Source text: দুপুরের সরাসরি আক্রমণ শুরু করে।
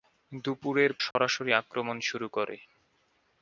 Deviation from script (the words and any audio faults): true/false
true